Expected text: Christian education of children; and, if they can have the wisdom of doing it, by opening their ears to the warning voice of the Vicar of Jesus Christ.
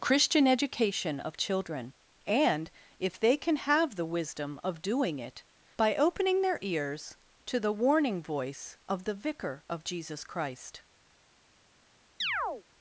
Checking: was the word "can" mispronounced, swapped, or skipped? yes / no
no